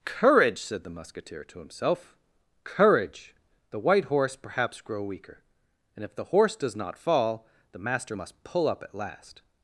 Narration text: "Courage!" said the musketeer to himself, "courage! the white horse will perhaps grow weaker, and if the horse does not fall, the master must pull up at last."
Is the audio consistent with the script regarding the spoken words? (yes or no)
no